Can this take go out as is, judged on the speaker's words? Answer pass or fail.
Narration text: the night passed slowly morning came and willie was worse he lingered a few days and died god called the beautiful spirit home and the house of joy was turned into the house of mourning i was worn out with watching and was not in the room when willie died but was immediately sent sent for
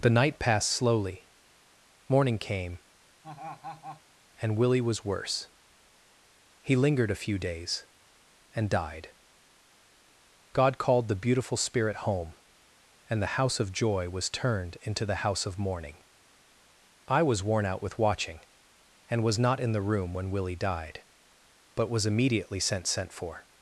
pass